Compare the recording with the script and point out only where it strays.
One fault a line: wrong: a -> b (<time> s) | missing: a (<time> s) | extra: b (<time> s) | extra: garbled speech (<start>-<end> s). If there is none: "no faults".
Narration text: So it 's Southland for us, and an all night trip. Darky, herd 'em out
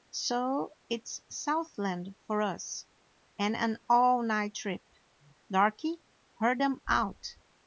no faults